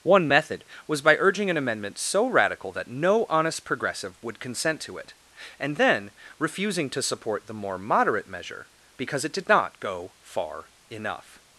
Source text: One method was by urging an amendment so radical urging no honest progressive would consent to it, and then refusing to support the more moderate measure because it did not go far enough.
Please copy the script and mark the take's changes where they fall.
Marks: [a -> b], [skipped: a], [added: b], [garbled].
One method was by urging an amendment so radical [urging -> that] no honest progressive would consent to it, and then refusing to support the more moderate measure because it did not go far enough.